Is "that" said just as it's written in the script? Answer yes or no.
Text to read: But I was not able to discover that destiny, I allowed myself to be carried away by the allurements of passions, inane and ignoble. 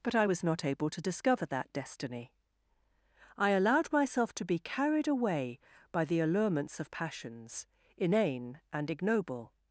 yes